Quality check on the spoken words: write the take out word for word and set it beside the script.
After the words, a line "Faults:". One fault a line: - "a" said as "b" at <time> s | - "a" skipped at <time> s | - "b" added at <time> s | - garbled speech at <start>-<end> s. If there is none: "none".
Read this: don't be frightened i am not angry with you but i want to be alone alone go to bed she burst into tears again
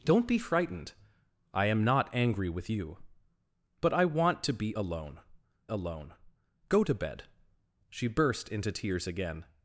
don't be frightened i am not angry with you but i want to be alone alone go to bed she burst into tears again
Faults:
none